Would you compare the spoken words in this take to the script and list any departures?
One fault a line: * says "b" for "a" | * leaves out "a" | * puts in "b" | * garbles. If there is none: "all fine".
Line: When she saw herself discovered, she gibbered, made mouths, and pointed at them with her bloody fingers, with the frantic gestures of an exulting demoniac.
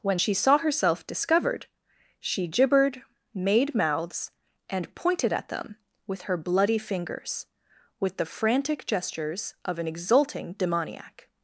all fine